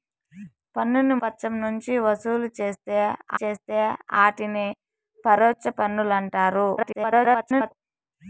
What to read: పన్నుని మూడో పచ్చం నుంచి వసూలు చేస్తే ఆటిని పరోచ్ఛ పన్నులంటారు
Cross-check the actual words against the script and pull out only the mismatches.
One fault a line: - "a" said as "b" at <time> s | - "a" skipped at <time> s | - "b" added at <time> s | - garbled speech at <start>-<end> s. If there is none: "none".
- "మూడో" skipped at 1.1 s
- "చేస్తే" added at 3.4 s
- garbled speech at 6.8-7.7 s